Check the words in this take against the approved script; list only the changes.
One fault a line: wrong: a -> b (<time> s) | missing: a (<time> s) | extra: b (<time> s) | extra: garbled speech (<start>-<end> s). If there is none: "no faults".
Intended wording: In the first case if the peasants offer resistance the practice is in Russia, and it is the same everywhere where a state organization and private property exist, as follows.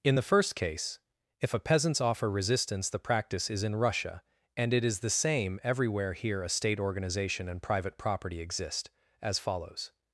wrong: the -> a (1.5 s)
wrong: where -> here (6.1 s)